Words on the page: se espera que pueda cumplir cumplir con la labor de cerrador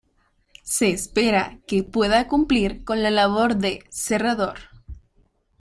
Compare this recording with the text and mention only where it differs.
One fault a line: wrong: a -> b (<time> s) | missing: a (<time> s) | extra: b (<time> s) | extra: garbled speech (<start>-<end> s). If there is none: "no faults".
missing: cumplir (2.9 s)